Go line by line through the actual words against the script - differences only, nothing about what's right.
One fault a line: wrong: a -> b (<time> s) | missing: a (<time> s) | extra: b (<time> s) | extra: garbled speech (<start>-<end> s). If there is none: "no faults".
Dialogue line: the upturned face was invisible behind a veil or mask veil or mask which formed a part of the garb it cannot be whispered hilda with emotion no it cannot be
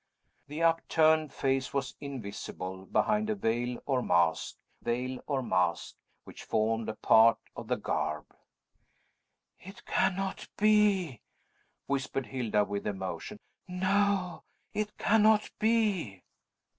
no faults